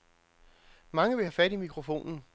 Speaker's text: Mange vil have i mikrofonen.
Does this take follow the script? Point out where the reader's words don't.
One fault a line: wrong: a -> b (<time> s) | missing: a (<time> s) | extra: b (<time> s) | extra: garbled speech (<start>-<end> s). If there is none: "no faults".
extra: fat (1.3 s)